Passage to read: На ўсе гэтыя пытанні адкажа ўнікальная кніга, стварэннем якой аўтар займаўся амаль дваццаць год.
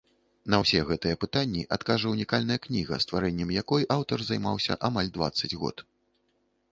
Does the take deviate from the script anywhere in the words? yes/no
no